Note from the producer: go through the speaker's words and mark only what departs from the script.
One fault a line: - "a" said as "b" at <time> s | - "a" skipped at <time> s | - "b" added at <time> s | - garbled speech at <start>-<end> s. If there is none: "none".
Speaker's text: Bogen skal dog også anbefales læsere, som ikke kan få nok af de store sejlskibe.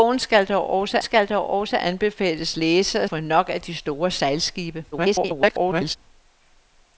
- "anbefales læsere som ikke kan" said as "skal dog også anbefales læsere" at 1.0 s
- garbled speech at 4.9-6.0 s